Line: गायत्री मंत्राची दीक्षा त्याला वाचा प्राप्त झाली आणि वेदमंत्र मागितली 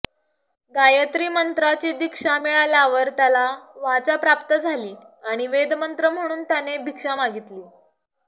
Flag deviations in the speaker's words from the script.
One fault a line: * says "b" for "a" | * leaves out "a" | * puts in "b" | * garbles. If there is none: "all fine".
* puts in "मिळाल्यावर"
* puts in "म्हणून त्याने भिक्षा"